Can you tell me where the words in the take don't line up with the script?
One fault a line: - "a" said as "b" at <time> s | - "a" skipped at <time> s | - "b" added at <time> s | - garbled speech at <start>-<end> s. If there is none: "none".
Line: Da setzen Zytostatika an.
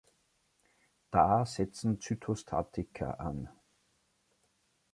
none